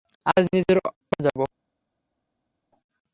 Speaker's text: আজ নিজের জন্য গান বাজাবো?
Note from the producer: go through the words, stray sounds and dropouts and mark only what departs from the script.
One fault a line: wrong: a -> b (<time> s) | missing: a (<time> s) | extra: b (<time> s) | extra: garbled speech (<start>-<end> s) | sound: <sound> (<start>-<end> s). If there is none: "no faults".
missing: জন্য গান (0.8 s)